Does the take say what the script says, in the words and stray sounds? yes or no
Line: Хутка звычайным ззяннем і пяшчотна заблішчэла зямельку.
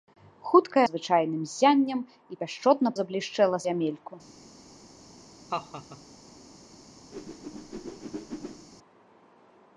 no